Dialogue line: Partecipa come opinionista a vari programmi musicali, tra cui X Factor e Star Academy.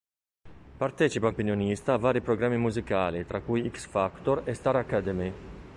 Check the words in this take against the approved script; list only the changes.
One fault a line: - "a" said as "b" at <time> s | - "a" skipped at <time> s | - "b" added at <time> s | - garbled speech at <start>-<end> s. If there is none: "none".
- "come" skipped at 1.3 s